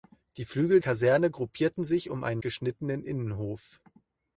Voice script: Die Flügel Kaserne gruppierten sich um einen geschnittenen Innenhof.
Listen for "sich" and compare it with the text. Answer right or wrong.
right